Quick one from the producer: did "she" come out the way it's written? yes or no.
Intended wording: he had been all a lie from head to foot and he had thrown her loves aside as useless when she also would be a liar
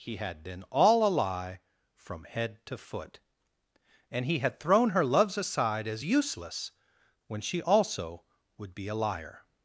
yes